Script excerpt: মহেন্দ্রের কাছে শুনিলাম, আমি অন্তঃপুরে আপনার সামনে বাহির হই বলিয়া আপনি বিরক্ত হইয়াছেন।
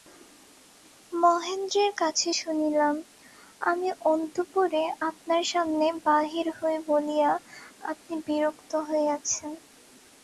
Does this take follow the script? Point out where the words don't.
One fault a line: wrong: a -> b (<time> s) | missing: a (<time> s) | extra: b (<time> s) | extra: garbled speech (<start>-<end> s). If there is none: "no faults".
no faults